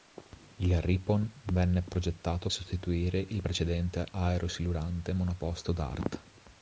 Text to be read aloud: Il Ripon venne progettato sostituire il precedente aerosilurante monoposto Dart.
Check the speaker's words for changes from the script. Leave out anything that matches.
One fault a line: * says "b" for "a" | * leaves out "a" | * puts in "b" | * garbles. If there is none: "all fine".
all fine